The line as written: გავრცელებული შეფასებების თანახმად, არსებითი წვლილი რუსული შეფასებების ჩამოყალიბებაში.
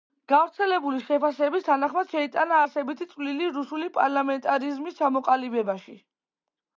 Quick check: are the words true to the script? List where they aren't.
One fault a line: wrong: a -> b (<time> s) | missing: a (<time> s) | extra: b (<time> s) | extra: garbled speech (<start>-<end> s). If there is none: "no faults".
extra: შეიტანა (2.1 s)
wrong: შეფასებების -> პარლამენტარიზმის (4.0 s)